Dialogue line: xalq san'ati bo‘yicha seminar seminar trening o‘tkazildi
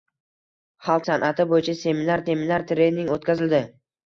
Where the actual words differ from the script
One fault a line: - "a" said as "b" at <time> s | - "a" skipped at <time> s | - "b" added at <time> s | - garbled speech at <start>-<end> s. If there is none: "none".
none